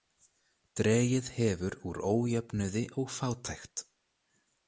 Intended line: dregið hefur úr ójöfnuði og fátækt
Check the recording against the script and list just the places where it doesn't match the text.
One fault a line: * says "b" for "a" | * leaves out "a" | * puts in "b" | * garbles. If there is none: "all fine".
all fine